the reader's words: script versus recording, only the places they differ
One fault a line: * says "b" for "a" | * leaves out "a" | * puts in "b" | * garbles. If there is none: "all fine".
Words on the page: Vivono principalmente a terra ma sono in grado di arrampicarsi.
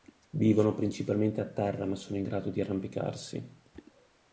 all fine